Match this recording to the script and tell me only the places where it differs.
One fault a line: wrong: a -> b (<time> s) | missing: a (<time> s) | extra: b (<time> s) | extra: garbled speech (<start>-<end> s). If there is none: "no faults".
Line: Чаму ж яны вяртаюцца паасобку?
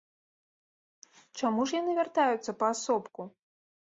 no faults